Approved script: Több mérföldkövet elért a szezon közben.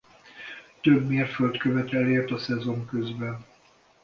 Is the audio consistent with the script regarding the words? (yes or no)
yes